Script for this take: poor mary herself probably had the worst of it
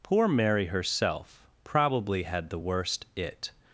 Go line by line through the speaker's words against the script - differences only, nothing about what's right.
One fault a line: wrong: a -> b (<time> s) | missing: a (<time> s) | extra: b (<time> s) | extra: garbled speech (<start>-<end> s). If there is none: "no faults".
missing: of (3.1 s)